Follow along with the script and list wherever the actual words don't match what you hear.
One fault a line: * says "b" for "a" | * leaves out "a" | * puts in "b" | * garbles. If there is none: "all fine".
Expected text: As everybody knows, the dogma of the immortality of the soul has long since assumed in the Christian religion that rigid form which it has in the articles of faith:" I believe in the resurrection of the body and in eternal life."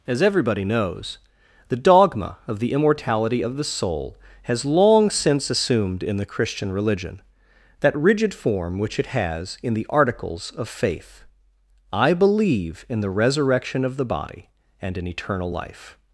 all fine